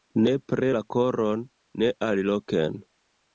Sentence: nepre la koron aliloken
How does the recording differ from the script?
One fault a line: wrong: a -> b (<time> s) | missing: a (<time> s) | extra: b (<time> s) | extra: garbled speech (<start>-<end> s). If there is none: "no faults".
extra: ne (1.8 s)